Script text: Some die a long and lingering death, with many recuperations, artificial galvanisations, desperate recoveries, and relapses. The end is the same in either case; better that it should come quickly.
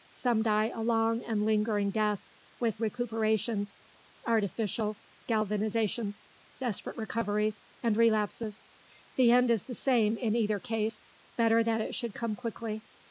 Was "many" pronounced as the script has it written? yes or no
no